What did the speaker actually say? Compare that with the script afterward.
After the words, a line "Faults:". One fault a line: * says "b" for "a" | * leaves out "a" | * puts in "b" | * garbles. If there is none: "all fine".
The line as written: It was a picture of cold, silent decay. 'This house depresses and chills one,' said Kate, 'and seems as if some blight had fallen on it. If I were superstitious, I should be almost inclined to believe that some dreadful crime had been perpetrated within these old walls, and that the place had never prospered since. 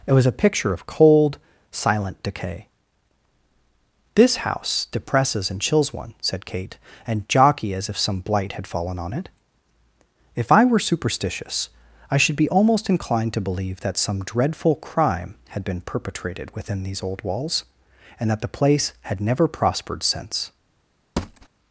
It was a picture of cold, silent decay. 'This house depresses and chills one,' said Kate, 'and jockey as if some blight had fallen on it. If I were superstitious, I should be almost inclined to believe that some dreadful crime had been perpetrated within these old walls, and that the place had never prospered since.
Faults:
* says "jockey" for "seems"